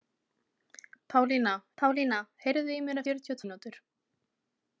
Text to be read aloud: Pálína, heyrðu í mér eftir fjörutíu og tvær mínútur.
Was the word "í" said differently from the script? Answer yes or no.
no